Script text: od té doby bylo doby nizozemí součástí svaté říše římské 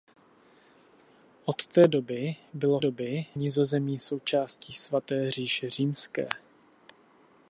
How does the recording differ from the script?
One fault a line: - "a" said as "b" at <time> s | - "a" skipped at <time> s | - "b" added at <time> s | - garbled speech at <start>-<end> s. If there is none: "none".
none